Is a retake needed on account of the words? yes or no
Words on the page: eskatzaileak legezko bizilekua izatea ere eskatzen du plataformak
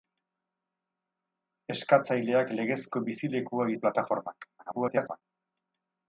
yes